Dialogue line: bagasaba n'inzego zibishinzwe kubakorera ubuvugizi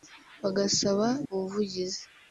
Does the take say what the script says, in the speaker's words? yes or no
no